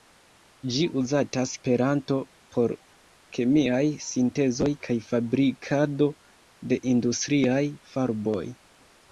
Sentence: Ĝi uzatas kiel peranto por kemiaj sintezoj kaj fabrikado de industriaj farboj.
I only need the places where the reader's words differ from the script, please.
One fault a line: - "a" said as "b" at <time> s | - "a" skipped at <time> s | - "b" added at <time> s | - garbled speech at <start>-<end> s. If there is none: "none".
- "kiel" skipped at 1.5 s